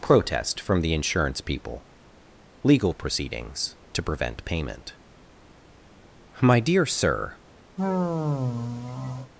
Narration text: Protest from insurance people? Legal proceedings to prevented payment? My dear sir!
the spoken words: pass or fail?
fail